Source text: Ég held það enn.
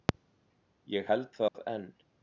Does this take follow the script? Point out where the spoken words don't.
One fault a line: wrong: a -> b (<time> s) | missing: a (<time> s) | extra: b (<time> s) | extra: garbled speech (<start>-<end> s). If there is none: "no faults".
no faults